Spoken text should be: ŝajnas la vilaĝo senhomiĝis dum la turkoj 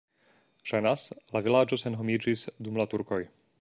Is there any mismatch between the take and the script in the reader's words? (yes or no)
no